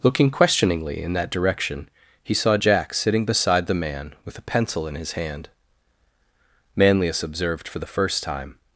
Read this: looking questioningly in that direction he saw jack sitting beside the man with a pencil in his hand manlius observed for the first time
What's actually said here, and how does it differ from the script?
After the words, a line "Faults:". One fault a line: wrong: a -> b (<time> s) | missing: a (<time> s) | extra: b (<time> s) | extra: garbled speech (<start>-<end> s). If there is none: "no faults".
looking questioningly in that direction he saw jack sitting beside the man with a pencil in his hand manlius observed for the first time
Faults:
no faults